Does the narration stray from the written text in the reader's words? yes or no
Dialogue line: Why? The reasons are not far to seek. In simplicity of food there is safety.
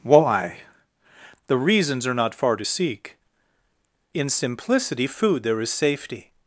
yes